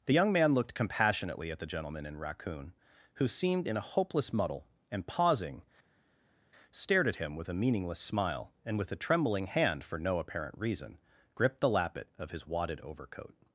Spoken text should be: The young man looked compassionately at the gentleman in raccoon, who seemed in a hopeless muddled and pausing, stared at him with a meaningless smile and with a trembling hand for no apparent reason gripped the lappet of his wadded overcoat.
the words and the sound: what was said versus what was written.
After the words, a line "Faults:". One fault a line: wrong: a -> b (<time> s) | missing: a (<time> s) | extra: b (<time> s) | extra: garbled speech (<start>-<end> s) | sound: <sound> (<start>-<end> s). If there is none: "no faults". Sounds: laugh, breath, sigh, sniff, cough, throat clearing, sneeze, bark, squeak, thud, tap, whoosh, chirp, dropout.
The young man looked compassionately at the gentleman in raccoon, who seemed in a hopeless muddle and pausing, stared at him with a meaningless smile and with a trembling hand for no apparent reason gripped the lappet of his wadded overcoat.
Faults:
wrong: muddled -> muddle (4.3 s)